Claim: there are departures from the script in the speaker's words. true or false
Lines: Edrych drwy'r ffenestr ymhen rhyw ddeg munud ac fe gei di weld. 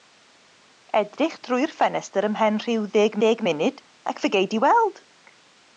true